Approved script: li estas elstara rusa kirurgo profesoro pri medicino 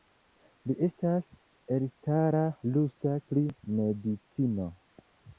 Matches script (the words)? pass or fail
fail